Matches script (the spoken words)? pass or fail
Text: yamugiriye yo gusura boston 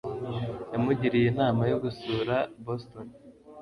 fail